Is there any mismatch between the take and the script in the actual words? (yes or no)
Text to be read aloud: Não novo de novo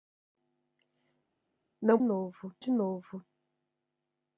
no